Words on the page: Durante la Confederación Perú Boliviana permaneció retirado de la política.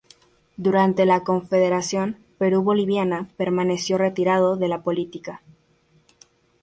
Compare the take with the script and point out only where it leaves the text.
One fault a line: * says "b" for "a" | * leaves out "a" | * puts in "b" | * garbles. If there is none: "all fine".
all fine